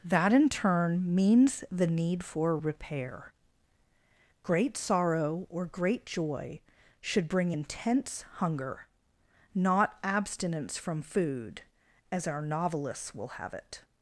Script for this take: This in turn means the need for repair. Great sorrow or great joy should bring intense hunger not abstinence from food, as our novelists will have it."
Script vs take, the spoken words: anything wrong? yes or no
yes